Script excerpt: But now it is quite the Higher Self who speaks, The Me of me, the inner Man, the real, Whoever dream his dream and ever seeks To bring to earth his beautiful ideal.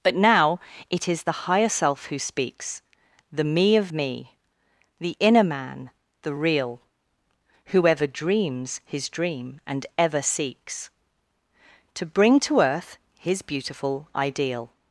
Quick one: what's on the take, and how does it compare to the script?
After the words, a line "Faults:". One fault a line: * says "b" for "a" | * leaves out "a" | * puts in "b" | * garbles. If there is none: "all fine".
But now it is the Higher Self who speaks, The Me of me, the inner Man, the real, Whoever dreams his dream and ever seeks To bring to earth his beautiful ideal.
Faults:
* leaves out "quite"
* says "dreams" for "dream"